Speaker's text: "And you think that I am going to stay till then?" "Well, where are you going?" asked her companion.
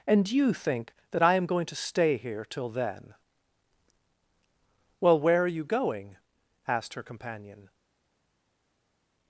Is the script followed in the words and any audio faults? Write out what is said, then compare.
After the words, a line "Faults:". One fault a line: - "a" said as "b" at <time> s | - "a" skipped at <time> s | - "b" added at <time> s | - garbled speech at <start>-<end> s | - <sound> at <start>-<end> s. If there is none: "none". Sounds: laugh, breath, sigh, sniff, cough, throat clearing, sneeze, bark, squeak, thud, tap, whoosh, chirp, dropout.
"And you think that I am going to stay here till then?" "Well, where are you going?" asked her companion.
Faults:
- "here" added at 2.2 s